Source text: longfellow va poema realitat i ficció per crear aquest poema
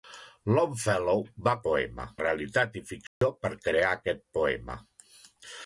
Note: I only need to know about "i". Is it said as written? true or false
true